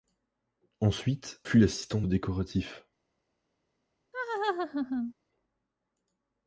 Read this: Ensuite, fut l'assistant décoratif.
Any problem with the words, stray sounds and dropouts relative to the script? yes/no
yes